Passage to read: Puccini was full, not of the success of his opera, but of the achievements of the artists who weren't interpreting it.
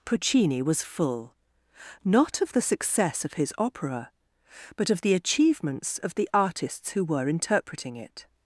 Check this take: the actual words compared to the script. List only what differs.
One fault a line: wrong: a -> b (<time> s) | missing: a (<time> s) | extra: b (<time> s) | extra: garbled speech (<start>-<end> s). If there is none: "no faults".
wrong: weren't -> were (7.0 s)